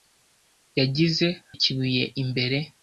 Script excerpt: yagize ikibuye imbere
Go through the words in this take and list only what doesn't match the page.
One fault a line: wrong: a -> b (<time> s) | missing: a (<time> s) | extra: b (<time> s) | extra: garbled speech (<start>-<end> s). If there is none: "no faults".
no faults